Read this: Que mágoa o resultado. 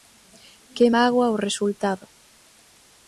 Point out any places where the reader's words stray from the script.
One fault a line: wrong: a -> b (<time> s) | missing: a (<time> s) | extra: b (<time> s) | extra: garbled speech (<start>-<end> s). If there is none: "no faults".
no faults